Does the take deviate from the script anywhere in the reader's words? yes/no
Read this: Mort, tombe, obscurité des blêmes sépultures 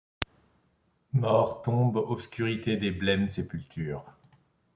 no